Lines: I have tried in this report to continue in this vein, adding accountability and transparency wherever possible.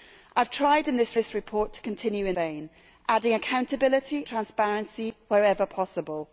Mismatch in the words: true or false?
true